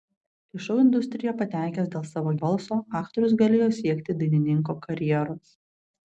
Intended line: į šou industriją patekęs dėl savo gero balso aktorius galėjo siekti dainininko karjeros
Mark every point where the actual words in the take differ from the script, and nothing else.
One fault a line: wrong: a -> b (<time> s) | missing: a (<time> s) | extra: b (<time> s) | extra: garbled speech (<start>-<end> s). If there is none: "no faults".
missing: gero (2.3 s)